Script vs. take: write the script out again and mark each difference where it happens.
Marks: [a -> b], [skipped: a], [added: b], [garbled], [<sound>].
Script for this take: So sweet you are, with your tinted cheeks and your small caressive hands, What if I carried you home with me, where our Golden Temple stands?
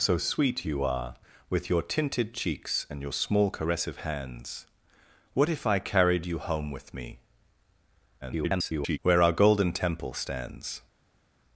So sweet you are, with your tinted cheeks and your small caressive hands, What if I carried you home with me, [garbled] where our Golden Temple stands?